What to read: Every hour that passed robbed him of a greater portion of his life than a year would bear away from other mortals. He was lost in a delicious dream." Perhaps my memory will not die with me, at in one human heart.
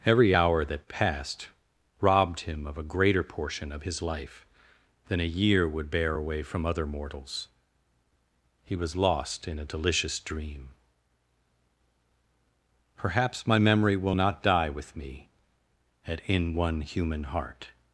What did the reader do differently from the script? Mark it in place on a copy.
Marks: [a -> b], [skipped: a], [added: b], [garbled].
Every hour that passed robbed him of a greater portion of his life than a year would bear away from other mortals. He was lost in a delicious dream." Perhaps my memory will not die with me, at in one human heart.